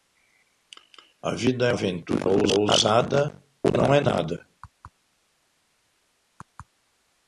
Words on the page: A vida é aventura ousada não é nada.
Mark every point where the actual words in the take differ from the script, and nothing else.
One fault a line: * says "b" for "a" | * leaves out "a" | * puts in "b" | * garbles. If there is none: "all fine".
all fine